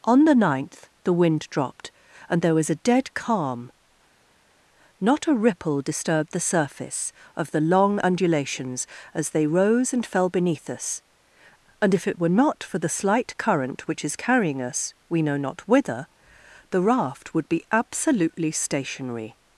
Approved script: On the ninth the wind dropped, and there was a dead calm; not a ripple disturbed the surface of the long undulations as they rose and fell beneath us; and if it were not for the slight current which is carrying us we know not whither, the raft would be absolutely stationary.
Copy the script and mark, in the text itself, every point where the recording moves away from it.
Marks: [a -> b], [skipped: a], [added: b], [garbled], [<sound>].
On the ninth the wind dropped, and there was a dead calm; not a ripple disturbed the surface of the long undulations as they rose and fell beneath us; and if it were not for the slight current which is carrying us we know not whither, the raft would be absolutely stationary.